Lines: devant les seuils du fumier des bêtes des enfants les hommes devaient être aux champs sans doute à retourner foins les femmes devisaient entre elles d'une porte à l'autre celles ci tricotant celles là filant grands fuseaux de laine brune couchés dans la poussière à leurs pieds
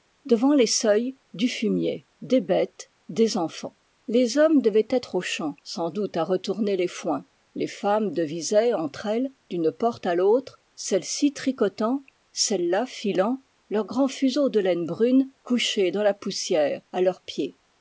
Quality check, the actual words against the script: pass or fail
fail